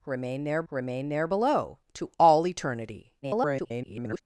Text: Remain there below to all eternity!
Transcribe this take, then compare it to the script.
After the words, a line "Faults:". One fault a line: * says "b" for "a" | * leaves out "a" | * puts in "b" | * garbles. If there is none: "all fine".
Remain there remain there below to all eternity! [garbled]
Faults:
* puts in "remain there"
* garbles